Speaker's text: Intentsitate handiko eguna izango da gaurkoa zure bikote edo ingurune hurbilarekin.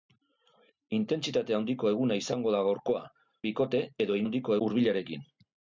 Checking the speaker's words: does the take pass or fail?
fail